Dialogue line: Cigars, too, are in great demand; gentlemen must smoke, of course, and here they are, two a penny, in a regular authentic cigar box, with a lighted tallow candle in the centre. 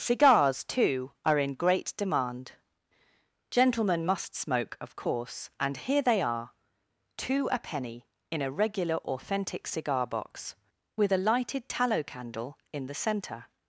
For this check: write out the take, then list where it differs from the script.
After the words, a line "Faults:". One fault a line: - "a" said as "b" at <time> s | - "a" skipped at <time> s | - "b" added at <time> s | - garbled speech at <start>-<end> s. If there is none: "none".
Cigars, too, are in great demand; gentlemen must smoke, of course, and here they are, two a penny, in a regular authentic cigar box, with a lighted tallow candle in the centre.
Faults:
none